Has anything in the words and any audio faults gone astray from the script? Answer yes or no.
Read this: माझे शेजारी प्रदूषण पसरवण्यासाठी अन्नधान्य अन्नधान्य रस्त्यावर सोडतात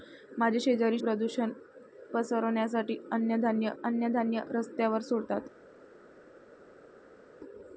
no